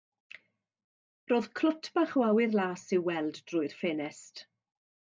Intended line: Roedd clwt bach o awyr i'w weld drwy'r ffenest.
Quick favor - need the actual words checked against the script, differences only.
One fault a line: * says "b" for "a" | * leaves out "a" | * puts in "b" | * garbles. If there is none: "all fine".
* puts in "las"